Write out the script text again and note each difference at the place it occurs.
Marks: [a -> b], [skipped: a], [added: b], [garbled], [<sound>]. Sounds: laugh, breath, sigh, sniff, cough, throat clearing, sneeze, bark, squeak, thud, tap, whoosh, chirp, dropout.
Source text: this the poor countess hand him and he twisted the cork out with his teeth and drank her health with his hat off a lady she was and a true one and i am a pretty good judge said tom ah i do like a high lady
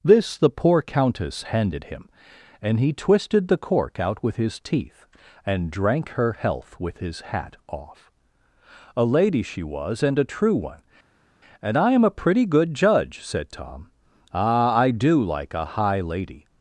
this the poor countess [hand -> handed] him and he twisted the cork out with his teeth and drank her health with his hat off a lady she was and a true one and i am a pretty good judge said tom ah i do like a high lady